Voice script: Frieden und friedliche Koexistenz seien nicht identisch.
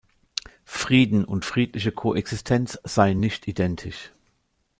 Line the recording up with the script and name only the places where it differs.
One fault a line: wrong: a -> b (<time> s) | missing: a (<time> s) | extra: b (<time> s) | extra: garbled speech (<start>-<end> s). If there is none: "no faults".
no faults